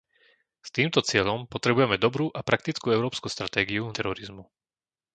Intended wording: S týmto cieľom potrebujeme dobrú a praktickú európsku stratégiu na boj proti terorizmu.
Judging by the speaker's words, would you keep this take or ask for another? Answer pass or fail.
fail